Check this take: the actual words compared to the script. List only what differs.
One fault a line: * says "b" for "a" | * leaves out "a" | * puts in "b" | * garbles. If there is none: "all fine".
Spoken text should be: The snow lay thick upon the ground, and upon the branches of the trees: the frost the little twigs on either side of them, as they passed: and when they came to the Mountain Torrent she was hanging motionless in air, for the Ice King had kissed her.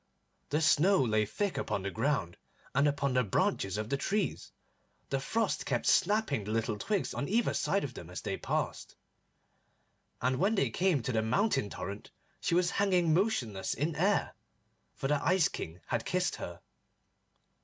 * puts in "kept snapping"